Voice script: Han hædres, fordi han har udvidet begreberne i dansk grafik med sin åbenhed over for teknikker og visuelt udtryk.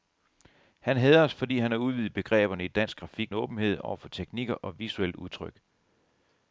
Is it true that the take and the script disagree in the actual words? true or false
true